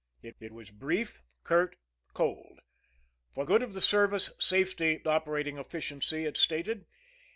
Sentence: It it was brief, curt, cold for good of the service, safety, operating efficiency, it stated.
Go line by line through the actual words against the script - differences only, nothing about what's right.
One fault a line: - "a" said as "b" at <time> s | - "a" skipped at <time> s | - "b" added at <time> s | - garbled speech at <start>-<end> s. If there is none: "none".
none